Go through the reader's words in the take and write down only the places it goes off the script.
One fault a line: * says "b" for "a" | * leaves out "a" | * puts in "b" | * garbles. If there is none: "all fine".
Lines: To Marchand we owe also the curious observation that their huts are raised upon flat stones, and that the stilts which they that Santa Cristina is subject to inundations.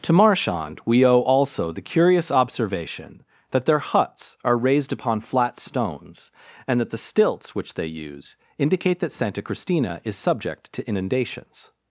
* puts in "use indicate"